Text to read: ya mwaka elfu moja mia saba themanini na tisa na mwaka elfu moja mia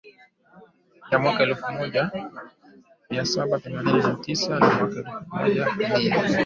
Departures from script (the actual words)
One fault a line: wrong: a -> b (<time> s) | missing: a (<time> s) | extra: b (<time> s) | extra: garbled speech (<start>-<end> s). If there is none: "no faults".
no faults